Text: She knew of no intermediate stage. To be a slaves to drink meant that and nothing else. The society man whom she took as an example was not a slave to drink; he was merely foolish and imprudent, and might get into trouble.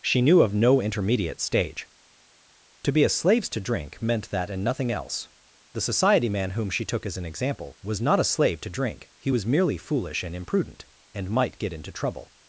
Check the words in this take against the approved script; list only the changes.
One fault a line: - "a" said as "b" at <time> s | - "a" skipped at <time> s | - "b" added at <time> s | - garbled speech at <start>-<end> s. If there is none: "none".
none